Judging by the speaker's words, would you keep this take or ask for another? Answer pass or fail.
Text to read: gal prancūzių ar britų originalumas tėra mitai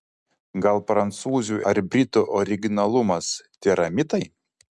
pass